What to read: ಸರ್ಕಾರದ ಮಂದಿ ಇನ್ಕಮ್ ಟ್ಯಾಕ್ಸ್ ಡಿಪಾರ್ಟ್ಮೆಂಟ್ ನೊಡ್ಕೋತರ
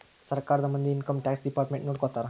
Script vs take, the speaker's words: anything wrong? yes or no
no